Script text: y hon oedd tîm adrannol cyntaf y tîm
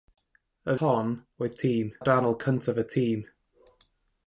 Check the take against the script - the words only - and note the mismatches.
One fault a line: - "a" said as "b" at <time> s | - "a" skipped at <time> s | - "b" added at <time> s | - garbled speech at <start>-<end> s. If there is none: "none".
none